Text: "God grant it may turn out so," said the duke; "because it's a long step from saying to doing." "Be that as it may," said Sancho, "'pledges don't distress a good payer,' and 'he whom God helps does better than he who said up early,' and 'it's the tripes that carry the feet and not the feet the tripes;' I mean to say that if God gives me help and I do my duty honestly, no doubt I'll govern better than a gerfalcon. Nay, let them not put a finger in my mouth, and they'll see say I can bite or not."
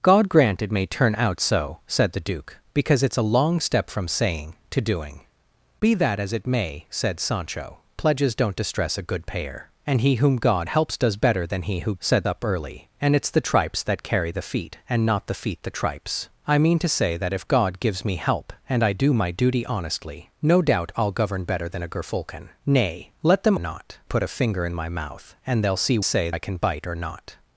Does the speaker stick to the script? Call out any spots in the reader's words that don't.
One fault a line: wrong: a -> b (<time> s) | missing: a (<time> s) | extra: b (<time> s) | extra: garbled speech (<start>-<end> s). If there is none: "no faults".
no faults